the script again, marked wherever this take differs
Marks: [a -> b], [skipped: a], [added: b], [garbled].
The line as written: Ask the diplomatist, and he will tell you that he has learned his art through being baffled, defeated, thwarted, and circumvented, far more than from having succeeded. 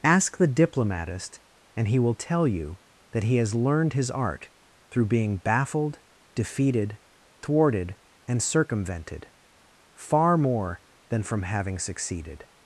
Ask the diplomatist, and he will tell you that he has learned his art through being baffled, defeated, thwarted, and circumvented, far more than from having succeeded.